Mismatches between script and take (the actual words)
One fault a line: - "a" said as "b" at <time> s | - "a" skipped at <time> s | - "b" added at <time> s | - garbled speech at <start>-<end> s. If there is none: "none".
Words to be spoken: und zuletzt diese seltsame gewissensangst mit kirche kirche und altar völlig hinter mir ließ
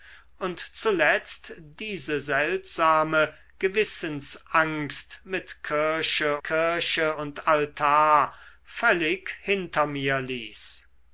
none